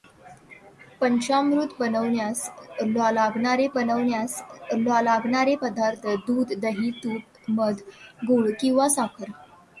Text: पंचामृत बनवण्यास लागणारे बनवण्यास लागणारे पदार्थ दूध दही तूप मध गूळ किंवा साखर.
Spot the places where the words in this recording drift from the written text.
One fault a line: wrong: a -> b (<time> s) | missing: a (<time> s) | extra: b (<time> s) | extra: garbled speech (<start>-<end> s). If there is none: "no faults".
no faults